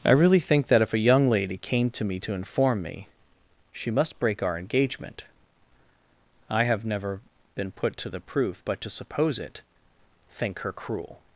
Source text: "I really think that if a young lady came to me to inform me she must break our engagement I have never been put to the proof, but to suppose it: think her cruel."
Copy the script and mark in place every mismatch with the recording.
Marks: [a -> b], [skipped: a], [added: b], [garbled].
"I really think that if a young lady came to me to inform me she must break our engagement I have never been put to the proof, but to suppose it: think her cruel."